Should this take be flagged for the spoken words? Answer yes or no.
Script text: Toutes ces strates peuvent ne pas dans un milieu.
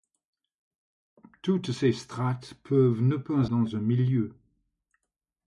no